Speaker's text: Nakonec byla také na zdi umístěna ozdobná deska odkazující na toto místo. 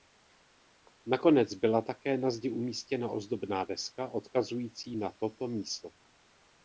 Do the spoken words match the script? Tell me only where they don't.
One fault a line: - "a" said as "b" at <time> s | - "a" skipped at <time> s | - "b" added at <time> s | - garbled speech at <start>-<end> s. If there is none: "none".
none